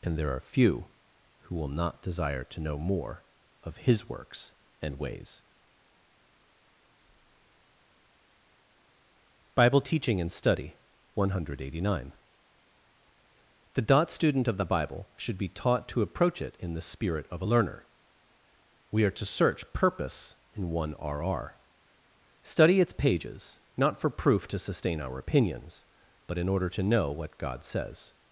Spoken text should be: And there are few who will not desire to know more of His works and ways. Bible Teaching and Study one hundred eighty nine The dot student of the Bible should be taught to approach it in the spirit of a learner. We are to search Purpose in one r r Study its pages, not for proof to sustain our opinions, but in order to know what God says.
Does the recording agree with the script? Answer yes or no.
yes